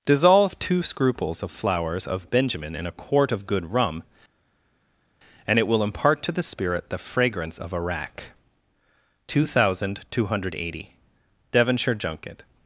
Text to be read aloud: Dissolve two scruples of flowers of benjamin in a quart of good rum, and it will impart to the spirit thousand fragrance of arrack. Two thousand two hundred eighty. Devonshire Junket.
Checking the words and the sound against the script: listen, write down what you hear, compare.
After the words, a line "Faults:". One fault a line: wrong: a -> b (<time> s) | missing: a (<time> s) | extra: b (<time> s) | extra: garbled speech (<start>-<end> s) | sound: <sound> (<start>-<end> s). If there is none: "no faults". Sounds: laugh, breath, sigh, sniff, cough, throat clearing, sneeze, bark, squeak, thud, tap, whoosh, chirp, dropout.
Dissolve two scruples of flowers of benjamin in a quart of good rum, and it will impart to the spirit the fragrance of arrack. Two thousand two hundred eighty. Devonshire Junket.
Faults:
wrong: thousand -> the (6.9 s)